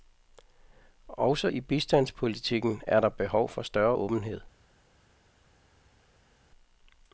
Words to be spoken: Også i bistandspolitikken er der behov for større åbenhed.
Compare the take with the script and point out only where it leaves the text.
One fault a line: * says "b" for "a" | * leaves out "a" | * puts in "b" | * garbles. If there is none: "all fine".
all fine